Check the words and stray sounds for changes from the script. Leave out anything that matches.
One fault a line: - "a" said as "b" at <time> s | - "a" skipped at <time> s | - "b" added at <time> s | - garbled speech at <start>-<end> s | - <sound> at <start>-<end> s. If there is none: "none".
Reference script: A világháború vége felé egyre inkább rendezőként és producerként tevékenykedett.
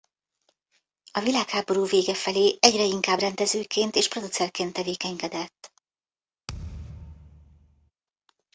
- thud at 6.5-7.9 s